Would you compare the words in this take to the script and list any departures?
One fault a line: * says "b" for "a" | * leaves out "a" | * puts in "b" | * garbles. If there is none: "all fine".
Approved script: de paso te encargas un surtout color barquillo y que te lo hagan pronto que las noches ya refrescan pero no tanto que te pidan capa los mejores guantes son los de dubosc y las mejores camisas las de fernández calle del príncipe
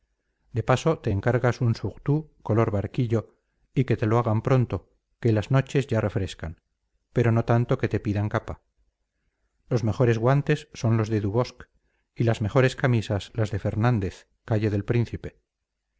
all fine